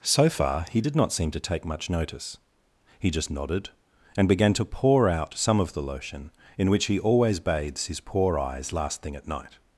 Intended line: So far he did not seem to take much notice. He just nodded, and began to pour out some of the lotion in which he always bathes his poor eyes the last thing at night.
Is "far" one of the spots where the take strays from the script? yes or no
no